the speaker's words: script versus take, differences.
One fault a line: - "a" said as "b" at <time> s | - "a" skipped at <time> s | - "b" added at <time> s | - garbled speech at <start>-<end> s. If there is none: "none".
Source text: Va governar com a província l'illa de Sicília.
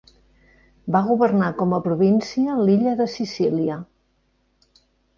none